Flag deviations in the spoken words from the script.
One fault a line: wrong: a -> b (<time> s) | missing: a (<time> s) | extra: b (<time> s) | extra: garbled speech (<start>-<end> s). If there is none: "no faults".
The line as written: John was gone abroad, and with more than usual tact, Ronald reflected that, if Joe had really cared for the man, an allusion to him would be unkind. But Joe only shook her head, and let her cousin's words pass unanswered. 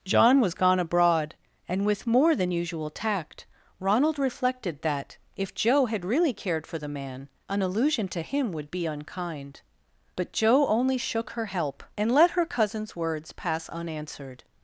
wrong: head -> help (11.5 s)